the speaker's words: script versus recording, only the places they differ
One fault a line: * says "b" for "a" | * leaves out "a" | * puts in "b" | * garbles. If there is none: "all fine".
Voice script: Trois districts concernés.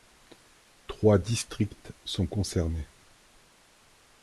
* puts in "sont"